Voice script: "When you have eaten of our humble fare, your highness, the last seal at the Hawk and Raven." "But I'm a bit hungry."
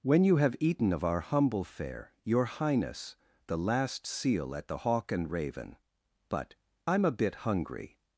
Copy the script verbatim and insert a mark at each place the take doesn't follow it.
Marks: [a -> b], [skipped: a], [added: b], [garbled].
"When you have eaten of our humble fare, your highness, the last seal at the Hawk and Raven." "But I'm a bit hungry."